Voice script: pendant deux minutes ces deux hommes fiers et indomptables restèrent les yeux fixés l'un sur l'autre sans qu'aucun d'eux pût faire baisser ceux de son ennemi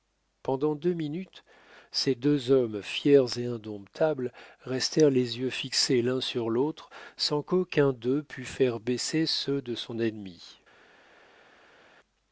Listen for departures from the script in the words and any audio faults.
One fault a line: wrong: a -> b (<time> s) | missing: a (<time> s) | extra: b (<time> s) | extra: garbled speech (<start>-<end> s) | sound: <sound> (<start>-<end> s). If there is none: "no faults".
no faults